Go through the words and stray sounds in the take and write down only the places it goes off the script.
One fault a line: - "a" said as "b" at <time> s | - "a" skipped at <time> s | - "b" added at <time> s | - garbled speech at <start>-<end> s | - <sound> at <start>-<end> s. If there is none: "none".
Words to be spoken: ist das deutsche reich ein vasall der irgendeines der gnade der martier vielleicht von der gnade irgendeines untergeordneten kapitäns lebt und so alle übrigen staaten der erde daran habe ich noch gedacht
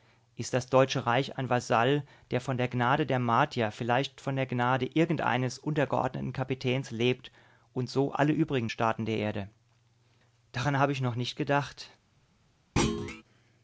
- "irgendeines" said as "von" at 2.4 s
- "nicht" added at 11.2 s
- thud at 12.8-13.2 s